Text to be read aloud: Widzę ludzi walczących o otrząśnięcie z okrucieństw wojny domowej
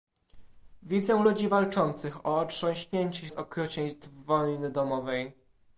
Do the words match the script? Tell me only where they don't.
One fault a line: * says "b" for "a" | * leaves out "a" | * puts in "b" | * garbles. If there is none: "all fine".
all fine